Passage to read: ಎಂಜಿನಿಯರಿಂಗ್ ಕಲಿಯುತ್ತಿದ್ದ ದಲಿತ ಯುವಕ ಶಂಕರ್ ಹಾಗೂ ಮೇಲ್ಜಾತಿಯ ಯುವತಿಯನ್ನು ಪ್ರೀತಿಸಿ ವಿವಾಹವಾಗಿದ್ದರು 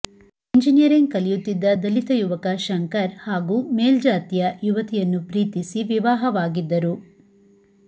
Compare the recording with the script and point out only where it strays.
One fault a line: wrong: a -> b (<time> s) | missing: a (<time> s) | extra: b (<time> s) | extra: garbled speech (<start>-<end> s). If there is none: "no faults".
no faults